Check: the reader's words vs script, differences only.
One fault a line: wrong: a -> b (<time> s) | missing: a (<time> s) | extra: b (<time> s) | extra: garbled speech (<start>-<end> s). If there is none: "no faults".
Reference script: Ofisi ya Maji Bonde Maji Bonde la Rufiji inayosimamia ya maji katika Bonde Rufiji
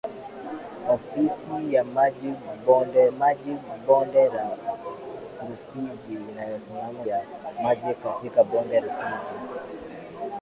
no faults